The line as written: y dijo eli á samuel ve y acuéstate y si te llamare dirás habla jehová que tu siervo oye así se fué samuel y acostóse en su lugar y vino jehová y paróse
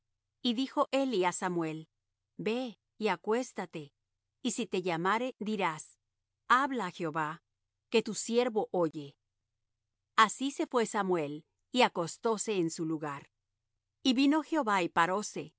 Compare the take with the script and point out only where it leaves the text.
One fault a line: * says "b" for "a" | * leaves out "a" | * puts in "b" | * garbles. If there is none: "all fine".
all fine